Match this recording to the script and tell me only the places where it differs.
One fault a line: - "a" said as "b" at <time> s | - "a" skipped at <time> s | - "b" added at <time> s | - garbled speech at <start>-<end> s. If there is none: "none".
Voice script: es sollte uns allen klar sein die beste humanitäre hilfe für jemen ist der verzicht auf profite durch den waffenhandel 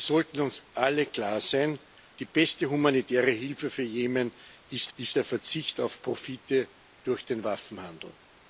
- "ist" added at 4.9 s